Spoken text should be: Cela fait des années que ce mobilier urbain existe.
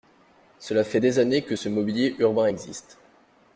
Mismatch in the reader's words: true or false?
false